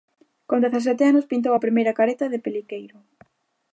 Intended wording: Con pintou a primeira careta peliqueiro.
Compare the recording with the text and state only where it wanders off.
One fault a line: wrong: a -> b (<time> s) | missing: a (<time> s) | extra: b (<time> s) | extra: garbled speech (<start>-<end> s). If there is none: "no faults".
extra: dezasete anos (0.7 s)
extra: de (2.3 s)